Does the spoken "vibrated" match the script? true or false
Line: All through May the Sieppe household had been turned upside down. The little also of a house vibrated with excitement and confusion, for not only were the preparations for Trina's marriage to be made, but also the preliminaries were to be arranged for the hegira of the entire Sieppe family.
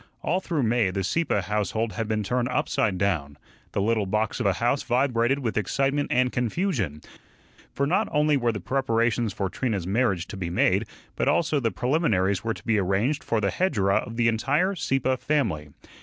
true